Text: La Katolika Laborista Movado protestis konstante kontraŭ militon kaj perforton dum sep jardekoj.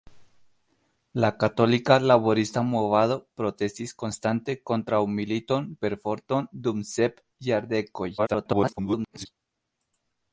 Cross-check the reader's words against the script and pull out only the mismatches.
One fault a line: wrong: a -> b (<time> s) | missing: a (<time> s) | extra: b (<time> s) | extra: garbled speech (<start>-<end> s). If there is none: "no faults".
missing: kaj (5.7 s)
extra: garbled speech (8.2-9.3 s)